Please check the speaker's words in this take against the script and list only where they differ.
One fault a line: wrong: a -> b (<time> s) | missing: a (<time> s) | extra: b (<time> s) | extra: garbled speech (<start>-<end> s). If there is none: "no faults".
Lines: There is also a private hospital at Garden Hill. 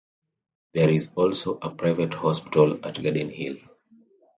no faults